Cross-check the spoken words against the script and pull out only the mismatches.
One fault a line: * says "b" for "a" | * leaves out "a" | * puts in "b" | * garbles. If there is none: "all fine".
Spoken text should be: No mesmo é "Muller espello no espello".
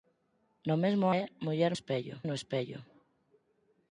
all fine